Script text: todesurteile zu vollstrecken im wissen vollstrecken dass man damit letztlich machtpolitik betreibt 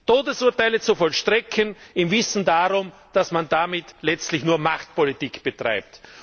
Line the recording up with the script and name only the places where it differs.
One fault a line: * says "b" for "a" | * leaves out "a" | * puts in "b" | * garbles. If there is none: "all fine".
* says "darum" for "vollstrecken"
* puts in "nur"